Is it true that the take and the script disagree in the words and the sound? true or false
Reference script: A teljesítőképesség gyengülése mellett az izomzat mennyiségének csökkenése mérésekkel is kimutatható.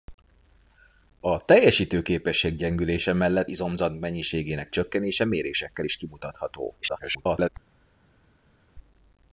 true